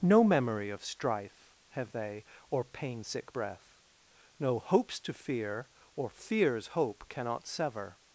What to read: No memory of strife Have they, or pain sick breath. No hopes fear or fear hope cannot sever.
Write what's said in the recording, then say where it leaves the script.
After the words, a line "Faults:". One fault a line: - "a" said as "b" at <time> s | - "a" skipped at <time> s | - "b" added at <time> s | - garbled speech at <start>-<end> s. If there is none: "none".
No memory of strife Have they, or pain sick breath. No hopes to fear or fears hope cannot sever.
Faults:
- "to" added at 5.0 s
- "fear" said as "fears" at 6.1 s